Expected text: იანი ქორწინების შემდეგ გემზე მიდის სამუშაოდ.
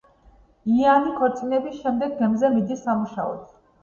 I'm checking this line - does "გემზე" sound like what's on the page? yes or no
yes